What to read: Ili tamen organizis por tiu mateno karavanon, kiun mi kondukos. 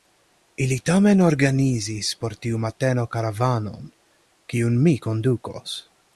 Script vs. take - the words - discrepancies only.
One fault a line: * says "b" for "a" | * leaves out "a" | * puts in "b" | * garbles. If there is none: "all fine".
all fine